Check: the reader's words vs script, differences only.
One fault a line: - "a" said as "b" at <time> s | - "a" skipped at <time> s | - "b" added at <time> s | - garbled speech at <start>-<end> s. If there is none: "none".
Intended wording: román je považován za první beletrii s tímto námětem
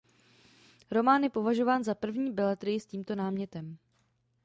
none